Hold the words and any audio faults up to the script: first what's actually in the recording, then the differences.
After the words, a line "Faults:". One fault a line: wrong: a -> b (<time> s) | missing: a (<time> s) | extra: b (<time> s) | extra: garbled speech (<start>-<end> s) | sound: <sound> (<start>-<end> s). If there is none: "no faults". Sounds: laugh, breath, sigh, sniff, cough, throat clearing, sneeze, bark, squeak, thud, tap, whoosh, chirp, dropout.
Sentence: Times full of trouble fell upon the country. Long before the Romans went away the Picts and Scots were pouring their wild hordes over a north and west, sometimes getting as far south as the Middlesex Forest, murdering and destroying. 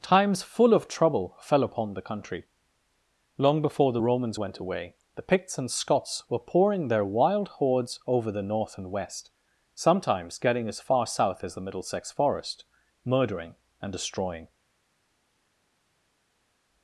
Times full of trouble fell upon the country. Long before the Romans went away the Picts and Scots were pouring their wild hordes over the north and west, sometimes getting as far south as the Middlesex Forest, murdering and destroying.
Faults:
wrong: a -> the (8.3 s)